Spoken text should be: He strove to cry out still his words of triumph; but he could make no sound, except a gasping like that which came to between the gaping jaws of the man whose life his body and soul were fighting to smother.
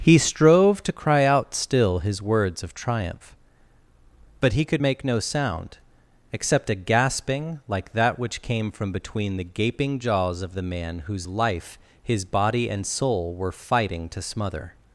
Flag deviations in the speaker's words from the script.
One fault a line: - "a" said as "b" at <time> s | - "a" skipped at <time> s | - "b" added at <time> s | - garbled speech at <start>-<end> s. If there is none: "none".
- "to" said as "from" at 8.7 s